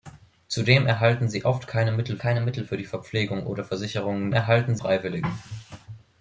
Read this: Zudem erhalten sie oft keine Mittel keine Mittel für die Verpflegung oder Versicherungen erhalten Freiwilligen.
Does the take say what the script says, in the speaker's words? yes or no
yes